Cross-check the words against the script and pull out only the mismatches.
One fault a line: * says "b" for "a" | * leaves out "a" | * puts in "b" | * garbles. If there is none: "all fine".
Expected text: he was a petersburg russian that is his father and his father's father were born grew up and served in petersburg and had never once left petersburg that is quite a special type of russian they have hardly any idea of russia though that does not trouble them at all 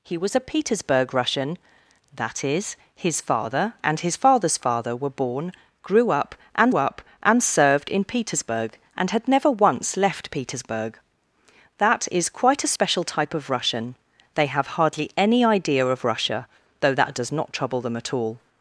* puts in "up and"